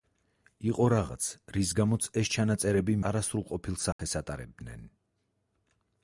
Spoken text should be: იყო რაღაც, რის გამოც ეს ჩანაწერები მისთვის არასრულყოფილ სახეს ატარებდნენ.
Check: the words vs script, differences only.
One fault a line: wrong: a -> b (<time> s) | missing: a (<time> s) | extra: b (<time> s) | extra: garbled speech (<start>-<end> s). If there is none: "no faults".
missing: მისთვის (3.0 s)